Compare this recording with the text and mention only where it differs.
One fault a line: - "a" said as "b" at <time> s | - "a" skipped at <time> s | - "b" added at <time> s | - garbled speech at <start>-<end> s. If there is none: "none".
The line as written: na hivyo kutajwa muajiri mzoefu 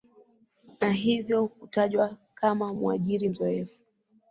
- "kama" added at 2.3 s